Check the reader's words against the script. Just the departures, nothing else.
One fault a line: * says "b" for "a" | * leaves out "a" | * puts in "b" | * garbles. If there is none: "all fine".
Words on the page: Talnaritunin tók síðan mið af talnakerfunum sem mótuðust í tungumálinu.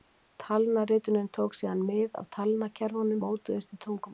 * leaves out "sem"